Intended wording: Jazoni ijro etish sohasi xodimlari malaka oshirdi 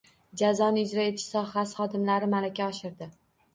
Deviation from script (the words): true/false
false